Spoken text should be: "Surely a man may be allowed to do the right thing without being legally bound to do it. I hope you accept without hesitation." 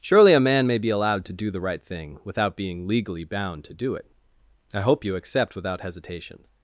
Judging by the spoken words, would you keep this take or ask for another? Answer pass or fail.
pass